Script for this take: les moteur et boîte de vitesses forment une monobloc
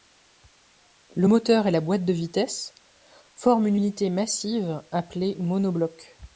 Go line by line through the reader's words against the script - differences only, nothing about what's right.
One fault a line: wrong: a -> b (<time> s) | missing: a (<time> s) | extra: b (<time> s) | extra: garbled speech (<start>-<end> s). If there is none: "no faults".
wrong: les -> le (1.1 s)
extra: la (1.7 s)
extra: unité massive appelée (3.7 s)